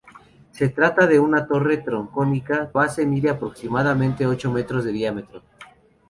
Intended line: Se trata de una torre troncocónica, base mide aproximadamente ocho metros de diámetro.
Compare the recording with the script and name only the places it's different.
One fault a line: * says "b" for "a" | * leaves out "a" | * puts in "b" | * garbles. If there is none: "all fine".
all fine